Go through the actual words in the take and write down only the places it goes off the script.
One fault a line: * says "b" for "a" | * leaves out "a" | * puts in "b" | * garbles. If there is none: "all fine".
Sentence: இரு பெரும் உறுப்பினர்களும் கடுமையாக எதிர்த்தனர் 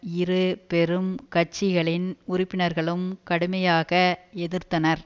* puts in "கட்சிகளின்"